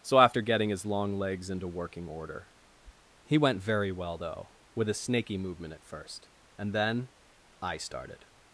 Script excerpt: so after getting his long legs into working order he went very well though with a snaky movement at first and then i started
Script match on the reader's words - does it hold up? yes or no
yes